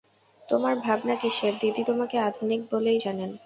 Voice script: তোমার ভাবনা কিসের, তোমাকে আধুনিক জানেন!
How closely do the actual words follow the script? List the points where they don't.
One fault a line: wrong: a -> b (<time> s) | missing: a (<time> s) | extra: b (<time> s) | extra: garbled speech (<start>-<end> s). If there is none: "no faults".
extra: দিদি (1.6 s)
extra: বলেই (2.7 s)